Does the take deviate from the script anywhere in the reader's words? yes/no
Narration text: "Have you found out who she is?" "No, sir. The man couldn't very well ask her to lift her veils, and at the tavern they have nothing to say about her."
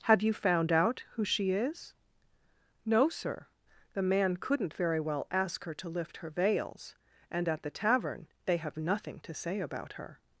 no